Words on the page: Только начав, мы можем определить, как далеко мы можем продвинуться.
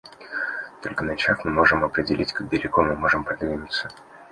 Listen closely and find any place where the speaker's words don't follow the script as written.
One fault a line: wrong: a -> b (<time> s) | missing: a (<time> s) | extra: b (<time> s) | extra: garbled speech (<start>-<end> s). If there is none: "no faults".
no faults